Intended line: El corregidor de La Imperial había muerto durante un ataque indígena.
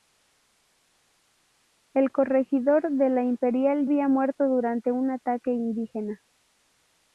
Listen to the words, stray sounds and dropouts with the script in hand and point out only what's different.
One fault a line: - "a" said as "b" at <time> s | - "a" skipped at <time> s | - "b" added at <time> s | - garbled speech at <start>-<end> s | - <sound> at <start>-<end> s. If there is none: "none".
none